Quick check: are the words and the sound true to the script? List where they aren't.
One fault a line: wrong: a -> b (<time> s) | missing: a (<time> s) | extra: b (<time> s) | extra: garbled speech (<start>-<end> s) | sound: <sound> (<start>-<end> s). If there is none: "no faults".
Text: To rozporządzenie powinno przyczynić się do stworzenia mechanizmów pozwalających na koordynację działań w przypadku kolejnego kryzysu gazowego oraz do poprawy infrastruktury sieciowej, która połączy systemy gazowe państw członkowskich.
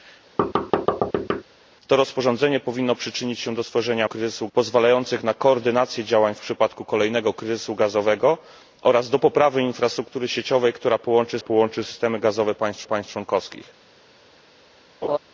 sound: thud (0.4-1.4 s)
wrong: mechanizmów -> kryzysu (4.0 s)
extra: połączy (11.4 s)
extra: państw (12.8 s)
sound: laugh (15.0-15.2 s)